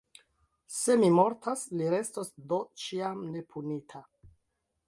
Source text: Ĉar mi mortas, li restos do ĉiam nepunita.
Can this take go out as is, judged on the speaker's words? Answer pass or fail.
fail